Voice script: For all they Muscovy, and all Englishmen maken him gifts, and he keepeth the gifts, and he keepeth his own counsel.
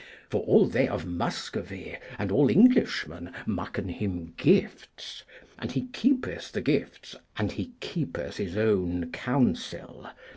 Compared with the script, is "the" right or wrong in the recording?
right